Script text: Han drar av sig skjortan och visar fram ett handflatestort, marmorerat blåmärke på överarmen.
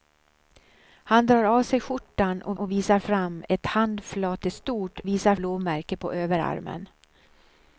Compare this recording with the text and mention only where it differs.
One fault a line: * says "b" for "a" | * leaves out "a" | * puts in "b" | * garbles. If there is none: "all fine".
* puts in "och"
* says "visar" for "marmorerat"